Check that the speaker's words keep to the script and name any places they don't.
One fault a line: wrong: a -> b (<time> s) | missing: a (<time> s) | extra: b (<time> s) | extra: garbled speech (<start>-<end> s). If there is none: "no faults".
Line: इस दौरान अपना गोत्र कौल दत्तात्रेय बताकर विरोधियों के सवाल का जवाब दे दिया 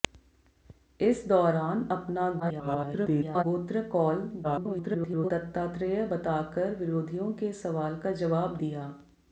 extra: garbled speech (2.4-3.4 s)
extra: garbled speech (4.4-5.3 s)
missing: दे (8.6 s)